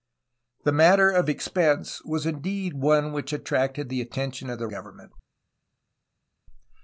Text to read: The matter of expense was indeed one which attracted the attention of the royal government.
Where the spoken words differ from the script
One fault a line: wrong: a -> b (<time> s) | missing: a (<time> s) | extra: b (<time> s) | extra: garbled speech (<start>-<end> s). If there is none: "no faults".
missing: royal (4.7 s)